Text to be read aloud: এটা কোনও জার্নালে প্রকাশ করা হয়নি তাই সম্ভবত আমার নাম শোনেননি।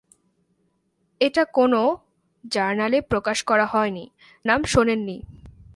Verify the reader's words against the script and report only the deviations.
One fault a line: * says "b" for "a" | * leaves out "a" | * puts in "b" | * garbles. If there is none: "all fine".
* leaves out "তাই সম্ভবত আমার"